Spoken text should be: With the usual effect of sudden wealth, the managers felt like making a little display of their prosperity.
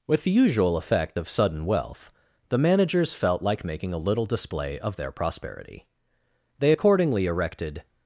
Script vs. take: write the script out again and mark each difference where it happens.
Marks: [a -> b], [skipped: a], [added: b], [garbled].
With the usual effect of sudden wealth, the managers felt like making a little display of their prosperity. [added: They accordingly erected]